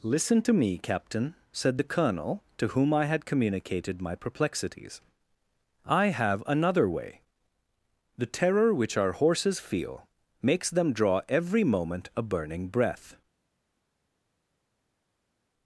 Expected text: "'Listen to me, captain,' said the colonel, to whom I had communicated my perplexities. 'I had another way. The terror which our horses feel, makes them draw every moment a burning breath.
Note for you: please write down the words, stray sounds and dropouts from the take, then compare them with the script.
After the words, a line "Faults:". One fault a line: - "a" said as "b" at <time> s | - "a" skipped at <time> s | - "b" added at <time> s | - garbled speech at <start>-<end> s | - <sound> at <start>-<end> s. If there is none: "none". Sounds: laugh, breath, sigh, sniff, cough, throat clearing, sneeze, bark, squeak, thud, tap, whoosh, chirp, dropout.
"'Listen to me, captain,' said the colonel, to whom I had communicated my perplexities. 'I have another way. The terror which our horses feel, makes them draw every moment a burning breath.
Faults:
- "had" said as "have" at 6.1 s